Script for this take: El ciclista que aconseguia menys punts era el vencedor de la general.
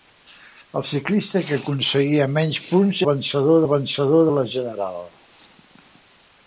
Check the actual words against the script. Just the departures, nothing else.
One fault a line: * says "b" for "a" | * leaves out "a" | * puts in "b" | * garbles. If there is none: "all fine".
* says "vencedor" for "era"